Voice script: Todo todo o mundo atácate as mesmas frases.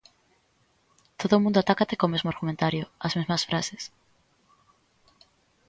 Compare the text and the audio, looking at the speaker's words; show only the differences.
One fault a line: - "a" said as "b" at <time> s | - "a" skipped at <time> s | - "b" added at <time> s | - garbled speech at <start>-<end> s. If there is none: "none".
- "todo" skipped at 1.3 s
- "co mesmo argumentario" added at 2.0 s